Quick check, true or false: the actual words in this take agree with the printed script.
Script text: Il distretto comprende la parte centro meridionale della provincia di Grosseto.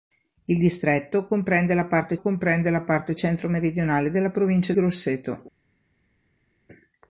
false